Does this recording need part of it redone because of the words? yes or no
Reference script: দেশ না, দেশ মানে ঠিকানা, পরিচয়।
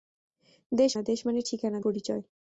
no